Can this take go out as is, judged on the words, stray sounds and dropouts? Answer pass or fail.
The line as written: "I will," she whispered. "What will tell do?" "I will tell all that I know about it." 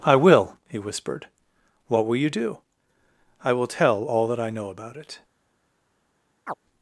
fail